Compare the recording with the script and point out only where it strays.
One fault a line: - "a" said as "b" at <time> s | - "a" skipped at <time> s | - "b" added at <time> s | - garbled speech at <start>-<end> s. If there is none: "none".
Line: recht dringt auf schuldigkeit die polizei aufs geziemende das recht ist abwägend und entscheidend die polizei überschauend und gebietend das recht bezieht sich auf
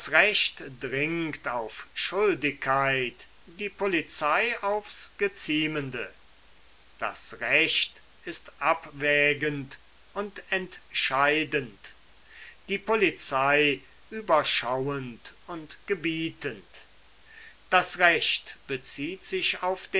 none